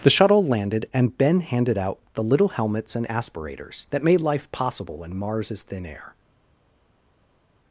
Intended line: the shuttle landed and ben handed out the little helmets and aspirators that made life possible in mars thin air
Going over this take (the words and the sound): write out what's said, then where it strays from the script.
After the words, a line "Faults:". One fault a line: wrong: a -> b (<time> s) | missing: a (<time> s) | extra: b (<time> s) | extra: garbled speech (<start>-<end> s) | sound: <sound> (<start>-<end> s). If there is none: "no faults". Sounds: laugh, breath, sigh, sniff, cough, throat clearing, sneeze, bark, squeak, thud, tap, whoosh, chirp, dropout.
the shuttle landed and ben handed out the little helmets and aspirators that made life possible in mars thin air
Faults:
no faults